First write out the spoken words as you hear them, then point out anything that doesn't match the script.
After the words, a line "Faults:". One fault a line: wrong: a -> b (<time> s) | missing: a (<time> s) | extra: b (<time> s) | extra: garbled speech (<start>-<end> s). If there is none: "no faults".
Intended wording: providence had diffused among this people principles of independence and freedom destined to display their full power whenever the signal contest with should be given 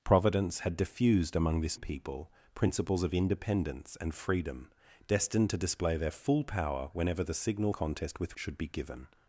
providence had diffused among this people principles of independence and freedom destined to display their full power whenever the signal contest with should be given
Faults:
no faults